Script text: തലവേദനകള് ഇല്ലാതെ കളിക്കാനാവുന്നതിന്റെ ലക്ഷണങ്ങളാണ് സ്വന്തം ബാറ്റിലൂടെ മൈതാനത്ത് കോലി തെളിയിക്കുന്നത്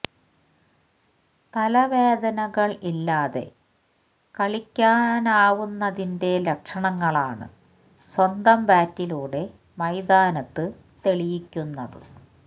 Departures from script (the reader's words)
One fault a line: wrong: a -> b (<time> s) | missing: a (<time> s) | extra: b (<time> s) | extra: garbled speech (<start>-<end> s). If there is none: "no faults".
missing: കോലി (10.7 s)